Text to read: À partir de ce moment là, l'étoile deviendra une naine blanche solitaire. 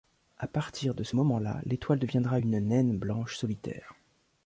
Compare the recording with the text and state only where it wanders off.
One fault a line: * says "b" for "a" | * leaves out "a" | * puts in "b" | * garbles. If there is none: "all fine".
all fine